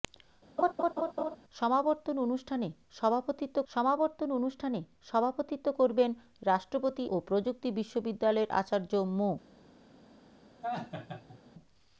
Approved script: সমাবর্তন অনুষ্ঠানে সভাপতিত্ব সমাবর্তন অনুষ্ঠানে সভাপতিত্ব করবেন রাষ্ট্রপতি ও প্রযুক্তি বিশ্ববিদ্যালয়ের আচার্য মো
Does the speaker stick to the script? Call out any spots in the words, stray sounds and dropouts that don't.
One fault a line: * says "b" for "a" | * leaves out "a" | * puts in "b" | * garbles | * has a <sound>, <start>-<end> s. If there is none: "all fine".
* has a laugh, 0.6-1.4 s
* has a laugh, 10.6-11.4 s